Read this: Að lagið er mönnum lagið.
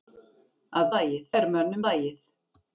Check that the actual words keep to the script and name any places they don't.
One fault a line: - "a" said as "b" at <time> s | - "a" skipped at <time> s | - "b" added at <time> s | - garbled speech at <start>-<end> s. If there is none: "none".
none